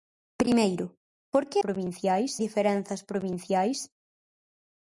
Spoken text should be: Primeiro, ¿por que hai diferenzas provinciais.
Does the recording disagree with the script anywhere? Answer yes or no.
yes